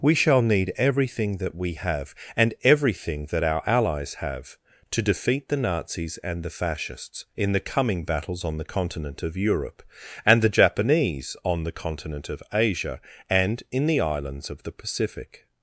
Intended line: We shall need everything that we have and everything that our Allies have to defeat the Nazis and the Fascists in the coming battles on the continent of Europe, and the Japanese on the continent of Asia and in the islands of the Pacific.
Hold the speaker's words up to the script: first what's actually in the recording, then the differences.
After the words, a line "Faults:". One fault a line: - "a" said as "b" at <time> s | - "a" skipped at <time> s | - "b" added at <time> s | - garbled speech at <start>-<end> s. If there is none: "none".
We shall need everything that we have and everything that our Allies have to defeat the Nazis and the Fascists in the coming battles on the continent of Europe, and the Japanese on the continent of Asia and in the islands of the Pacific.
Faults:
none